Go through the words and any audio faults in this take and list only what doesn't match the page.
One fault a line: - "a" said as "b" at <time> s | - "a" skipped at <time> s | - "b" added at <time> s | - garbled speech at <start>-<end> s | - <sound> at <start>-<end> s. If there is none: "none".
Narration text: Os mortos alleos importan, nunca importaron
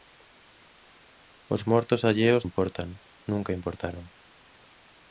none